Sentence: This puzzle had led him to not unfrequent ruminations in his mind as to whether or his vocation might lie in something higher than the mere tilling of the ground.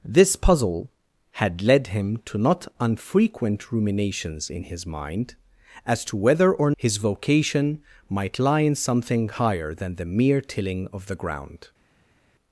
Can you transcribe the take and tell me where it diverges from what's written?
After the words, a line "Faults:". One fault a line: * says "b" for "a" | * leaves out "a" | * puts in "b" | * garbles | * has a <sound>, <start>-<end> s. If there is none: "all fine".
This puzzle had led him to not unfrequent ruminations in his mind as to whether or his vocation might lie in something higher than the mere tilling of the ground.
Faults:
all fine